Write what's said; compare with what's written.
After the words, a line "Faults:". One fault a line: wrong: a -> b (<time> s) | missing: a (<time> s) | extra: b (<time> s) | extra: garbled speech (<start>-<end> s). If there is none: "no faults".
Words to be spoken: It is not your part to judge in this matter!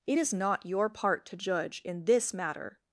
It is not your part to judge in this matter!
Faults:
no faults